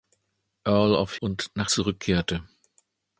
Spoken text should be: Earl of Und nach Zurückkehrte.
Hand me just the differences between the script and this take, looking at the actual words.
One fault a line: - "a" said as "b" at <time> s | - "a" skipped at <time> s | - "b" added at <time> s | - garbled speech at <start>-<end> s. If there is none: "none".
none